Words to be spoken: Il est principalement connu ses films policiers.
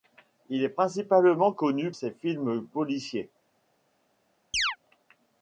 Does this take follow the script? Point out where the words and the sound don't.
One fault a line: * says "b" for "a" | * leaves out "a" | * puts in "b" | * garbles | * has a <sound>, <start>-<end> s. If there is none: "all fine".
* has a chirp, 4.5-4.8 s